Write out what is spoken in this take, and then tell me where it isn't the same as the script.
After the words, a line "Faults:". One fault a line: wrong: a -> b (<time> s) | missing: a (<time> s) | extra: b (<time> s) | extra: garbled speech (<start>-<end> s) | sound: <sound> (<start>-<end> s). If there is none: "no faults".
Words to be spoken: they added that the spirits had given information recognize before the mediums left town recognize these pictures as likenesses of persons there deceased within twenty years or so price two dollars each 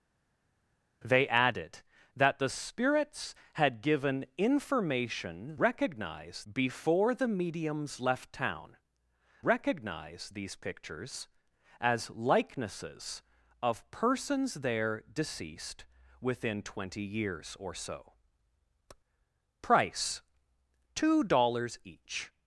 they added that the spirits had given information recognize before the mediums left town recognize these pictures as likenesses of persons there deceased within twenty years or so price two dollars each
Faults:
no faults